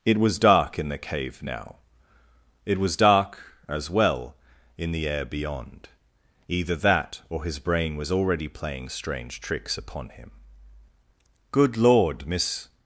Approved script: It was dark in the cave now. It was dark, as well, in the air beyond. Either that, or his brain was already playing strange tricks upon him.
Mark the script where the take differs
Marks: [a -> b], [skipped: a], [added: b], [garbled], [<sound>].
It was dark in the cave now. It was dark, as well, in the air beyond. Either that, or his brain was already playing strange tricks upon him. [added: Good Lord Miss]